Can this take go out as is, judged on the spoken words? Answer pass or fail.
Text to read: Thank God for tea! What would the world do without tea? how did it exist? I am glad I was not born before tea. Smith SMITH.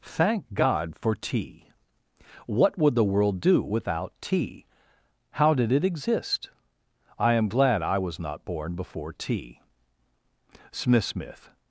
pass